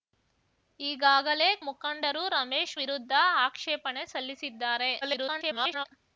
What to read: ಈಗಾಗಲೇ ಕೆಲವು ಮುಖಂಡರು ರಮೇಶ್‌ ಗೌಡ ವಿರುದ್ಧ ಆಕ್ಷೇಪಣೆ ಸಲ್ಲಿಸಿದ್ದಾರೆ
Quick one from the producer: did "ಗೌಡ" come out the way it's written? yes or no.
no